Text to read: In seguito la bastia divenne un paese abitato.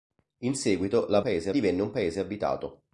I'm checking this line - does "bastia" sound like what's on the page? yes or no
no